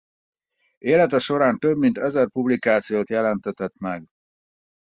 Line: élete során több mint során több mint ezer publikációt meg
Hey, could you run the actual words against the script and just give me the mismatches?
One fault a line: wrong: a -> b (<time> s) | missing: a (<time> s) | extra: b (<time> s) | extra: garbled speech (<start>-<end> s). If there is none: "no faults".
missing: során több mint (2.0 s)
extra: jelentetett (3.1 s)